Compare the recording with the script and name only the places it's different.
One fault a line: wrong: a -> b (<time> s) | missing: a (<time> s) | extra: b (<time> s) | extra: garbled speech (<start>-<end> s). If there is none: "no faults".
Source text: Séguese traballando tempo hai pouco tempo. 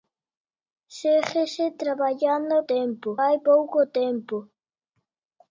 no faults